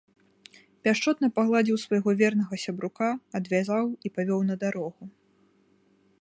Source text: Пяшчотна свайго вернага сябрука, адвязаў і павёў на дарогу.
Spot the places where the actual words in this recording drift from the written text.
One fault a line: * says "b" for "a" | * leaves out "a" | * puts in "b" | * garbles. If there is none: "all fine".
* puts in "пагладзіў"